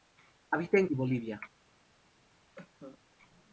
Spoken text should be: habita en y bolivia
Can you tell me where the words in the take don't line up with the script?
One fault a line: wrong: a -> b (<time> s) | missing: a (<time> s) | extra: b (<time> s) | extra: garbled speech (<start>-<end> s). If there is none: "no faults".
no faults